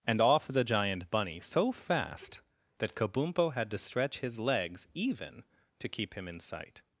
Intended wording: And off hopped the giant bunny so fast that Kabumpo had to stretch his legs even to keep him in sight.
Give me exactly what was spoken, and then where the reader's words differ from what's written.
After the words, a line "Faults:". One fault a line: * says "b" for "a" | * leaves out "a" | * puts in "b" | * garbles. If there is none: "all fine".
And off the giant bunny so fast that Kabumpo had to stretch his legs even to keep him in sight.
Faults:
* leaves out "hopped"